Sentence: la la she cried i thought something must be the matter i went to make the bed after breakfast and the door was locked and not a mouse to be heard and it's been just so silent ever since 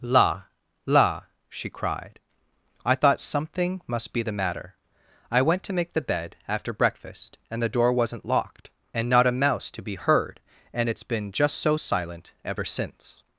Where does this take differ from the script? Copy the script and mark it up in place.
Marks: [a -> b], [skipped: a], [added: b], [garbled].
la la she cried i thought something must be the matter i went to make the bed after breakfast and the door [was -> wasn't] locked and not a mouse to be heard and it's been just so silent ever since